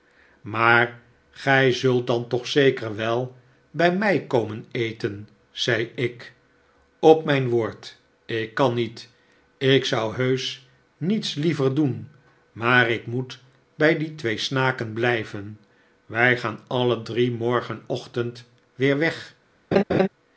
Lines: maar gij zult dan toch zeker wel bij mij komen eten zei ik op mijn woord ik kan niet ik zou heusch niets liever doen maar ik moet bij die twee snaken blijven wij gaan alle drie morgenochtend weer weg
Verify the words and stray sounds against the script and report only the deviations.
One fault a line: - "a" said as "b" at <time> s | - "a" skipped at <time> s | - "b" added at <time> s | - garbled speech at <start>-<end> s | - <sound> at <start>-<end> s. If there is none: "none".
- laugh at 19.7-20.1 s